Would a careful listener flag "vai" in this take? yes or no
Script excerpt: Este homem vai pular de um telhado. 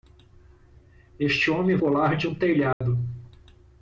yes